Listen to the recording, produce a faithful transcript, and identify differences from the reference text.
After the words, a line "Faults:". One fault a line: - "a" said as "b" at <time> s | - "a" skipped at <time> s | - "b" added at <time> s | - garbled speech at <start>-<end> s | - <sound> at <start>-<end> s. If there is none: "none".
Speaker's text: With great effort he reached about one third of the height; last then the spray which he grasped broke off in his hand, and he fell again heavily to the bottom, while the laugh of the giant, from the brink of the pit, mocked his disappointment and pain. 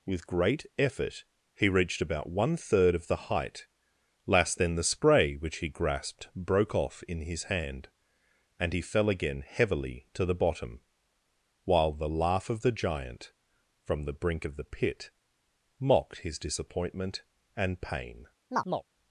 With great effort he reached about one third of the height; last then the spray which he grasped broke off in his hand, and he fell again heavily to the bottom, while the laugh of the giant, from the brink of the pit, mocked his disappointment and pain.
Faults:
- chirp at 18.5-18.9 s